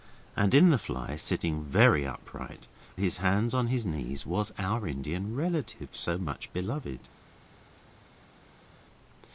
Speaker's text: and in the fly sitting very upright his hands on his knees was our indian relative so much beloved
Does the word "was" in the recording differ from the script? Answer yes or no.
no